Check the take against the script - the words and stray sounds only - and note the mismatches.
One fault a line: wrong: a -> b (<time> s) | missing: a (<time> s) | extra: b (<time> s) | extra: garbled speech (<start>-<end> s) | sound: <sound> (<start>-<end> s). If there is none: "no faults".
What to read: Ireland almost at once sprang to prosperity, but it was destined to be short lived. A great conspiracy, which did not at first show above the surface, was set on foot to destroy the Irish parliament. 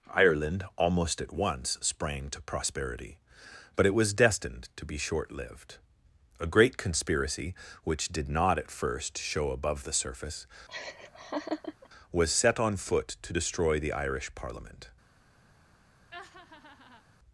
sound: laugh (10.7-11.9 s)
sound: laugh (16.1-17.0 s)